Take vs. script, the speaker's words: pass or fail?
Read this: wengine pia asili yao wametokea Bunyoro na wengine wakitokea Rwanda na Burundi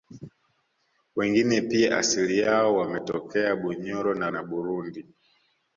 fail